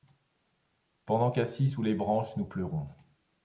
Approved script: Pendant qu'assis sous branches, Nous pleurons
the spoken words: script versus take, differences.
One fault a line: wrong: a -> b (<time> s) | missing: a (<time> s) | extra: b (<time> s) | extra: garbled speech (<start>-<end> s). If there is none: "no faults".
extra: les (1.8 s)